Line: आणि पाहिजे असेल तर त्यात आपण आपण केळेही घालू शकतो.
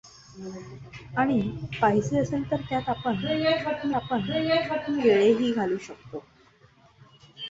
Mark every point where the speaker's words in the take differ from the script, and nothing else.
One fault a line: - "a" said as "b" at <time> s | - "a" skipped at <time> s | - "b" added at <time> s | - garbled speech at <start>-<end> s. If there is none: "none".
none